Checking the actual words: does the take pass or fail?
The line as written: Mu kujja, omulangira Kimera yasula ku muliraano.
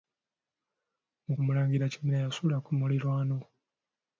fail